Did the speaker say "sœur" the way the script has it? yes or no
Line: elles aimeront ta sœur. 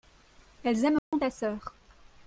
yes